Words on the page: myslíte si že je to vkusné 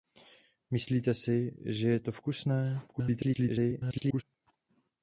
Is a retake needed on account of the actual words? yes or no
yes